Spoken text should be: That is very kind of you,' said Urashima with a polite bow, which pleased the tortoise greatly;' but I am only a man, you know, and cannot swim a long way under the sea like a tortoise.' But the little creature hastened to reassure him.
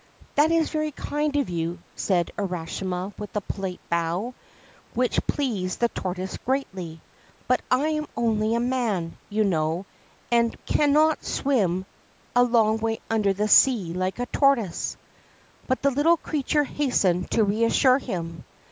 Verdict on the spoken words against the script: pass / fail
pass